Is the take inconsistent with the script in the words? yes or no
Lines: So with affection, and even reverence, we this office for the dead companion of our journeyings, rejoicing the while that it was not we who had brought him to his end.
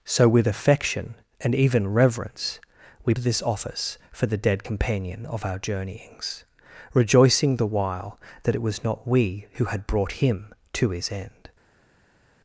no